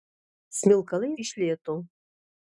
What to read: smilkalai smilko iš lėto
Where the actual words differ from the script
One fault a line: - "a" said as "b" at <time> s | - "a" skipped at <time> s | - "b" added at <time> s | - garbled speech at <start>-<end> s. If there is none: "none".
- "smilko" skipped at 1.1 s